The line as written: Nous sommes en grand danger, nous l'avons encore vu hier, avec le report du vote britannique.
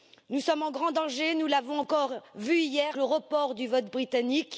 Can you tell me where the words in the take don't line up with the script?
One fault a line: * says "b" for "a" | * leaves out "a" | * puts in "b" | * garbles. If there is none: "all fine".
* leaves out "avec"